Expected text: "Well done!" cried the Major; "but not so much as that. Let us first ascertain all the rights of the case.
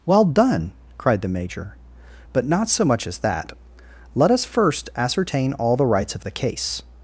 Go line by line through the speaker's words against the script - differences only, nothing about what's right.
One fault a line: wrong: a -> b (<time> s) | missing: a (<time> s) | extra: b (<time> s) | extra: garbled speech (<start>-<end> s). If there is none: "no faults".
no faults